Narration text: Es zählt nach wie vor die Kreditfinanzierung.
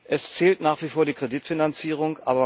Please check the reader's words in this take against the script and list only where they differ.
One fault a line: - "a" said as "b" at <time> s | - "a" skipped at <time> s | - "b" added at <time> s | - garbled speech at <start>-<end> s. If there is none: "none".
none